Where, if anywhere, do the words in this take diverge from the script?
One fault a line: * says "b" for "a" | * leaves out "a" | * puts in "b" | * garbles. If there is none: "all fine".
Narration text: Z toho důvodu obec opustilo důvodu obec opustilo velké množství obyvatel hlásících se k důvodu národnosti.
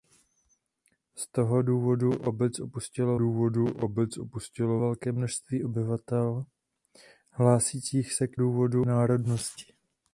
all fine